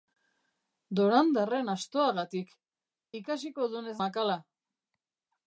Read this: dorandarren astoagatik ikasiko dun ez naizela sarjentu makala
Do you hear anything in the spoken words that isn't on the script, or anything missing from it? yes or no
yes